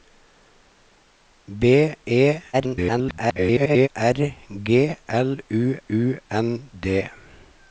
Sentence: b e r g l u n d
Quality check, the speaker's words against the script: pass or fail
fail